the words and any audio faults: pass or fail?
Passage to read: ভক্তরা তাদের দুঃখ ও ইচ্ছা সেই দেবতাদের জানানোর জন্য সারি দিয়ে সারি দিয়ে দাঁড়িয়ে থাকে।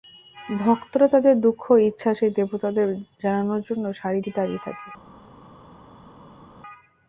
fail